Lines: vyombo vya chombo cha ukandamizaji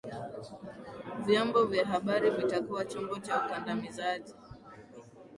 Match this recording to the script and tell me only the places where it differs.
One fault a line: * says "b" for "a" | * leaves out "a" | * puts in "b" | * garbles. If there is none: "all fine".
* puts in "habari vitakuwa"